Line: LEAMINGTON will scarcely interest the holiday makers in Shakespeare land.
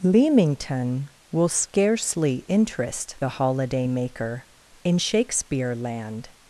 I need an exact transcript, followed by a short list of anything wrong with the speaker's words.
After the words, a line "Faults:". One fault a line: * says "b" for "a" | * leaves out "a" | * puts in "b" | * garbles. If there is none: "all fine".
LEAMINGTON will scarcely interest the holiday maker in Shakespeare land.
Faults:
* says "maker" for "makers"